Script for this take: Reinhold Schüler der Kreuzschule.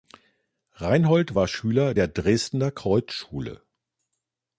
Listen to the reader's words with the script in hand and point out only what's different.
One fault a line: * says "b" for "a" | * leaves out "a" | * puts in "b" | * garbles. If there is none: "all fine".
* puts in "war"
* puts in "Dresdner"